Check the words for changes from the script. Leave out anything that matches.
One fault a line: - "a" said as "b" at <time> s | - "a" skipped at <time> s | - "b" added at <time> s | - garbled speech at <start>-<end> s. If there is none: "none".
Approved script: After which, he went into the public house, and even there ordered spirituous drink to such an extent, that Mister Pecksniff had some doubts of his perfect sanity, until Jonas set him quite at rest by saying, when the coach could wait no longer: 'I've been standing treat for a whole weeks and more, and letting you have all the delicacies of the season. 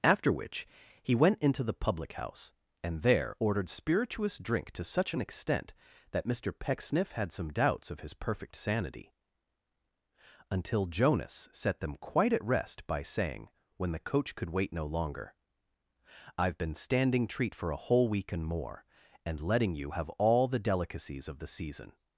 - "even" skipped at 3.0 s
- "him" said as "them" at 11.8 s
- "weeks" said as "week" at 18.1 s